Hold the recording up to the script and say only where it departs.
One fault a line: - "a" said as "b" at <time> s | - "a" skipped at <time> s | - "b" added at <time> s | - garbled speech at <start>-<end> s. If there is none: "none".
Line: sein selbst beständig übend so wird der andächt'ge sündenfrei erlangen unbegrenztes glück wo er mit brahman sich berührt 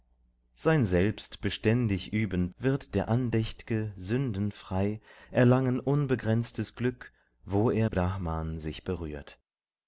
- "so" skipped at 2.5 s
- "mit" skipped at 7.9 s